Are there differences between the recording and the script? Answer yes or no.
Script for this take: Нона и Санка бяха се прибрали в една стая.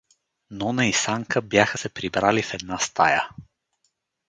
no